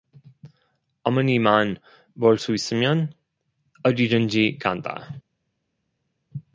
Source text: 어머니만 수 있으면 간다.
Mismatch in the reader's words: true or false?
true